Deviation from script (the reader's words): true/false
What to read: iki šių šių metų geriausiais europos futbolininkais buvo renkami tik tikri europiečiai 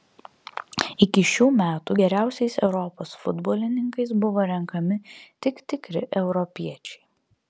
true